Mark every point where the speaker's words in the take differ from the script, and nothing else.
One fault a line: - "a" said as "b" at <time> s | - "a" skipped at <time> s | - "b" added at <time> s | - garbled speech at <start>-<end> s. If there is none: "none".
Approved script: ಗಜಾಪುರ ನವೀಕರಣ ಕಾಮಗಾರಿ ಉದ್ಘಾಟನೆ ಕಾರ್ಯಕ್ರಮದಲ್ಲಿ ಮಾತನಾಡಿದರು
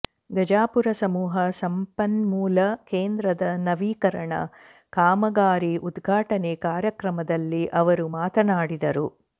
- "ಸಮೂಹ ಸಂಪನ್ಮೂಲ ಕೇಂದ್ರದ" added at 1.0 s
- "ಅವರು" added at 7.8 s